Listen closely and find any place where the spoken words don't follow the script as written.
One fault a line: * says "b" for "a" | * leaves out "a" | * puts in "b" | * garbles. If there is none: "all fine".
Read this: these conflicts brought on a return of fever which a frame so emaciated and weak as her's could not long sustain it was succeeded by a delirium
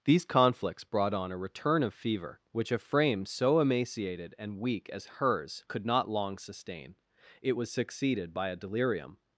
all fine